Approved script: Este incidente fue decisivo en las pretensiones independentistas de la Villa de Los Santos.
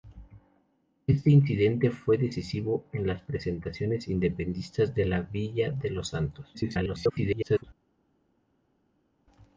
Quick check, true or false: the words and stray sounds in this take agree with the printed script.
false